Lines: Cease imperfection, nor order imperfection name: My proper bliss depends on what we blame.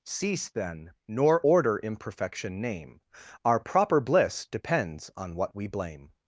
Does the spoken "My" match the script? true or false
false